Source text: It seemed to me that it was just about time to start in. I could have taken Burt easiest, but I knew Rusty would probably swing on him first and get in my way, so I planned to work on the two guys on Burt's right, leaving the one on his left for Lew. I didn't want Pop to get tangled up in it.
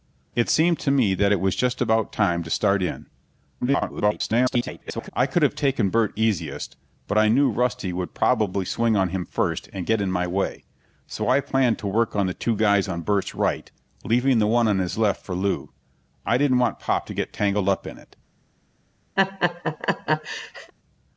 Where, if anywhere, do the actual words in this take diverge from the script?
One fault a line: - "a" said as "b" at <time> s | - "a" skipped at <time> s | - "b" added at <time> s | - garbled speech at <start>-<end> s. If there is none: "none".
- garbled speech at 3.6-5.1 s